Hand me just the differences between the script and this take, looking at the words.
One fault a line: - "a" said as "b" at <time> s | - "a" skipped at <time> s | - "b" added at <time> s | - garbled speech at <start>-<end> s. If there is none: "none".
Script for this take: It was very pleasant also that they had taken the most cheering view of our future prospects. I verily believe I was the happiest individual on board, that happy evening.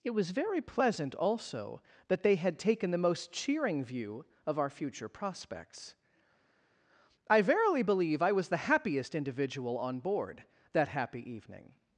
none